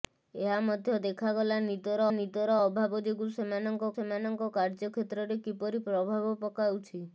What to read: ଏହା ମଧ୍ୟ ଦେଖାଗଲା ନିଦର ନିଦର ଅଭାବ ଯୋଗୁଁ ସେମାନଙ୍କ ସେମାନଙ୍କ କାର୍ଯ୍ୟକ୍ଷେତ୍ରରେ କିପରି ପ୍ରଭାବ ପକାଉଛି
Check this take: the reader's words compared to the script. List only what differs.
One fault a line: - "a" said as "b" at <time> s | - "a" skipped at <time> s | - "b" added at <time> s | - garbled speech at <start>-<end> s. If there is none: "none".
none